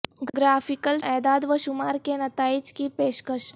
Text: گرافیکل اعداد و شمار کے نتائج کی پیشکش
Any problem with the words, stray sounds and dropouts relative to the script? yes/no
no